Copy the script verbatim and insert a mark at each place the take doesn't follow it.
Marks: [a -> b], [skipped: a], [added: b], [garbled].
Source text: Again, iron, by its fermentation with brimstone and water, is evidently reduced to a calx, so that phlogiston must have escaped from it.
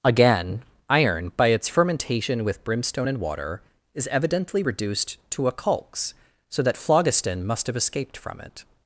Again, iron, by its fermentation with brimstone and water, is evidently reduced to a calx, so that phlogiston must have escaped from it.